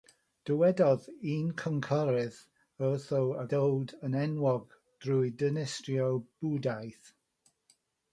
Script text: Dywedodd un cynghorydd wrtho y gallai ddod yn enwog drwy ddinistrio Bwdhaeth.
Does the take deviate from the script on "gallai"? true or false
true